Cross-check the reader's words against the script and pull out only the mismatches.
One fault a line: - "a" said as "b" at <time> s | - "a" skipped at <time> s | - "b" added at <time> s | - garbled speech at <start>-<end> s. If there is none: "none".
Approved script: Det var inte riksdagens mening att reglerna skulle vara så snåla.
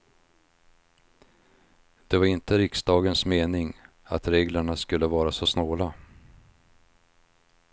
none